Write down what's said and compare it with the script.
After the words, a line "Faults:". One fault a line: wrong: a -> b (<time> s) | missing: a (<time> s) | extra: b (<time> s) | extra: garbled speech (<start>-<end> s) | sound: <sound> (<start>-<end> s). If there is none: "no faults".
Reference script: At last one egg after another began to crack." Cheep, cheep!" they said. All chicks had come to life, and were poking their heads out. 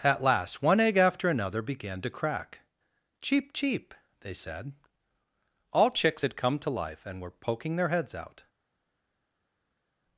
At last one egg after another began to crack." Cheep, cheep!" they said. All chicks had come to life, and were poking their heads out.
Faults:
no faults